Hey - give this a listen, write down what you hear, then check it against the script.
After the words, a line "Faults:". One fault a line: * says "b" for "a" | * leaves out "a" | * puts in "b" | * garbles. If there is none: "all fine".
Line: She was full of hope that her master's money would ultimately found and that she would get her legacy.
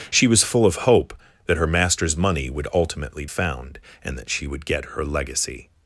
She was full of hope that her master's money would ultimately found and that she would get her legacy.
Faults:
all fine